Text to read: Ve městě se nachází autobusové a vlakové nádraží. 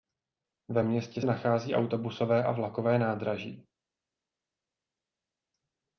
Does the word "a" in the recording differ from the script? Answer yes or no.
no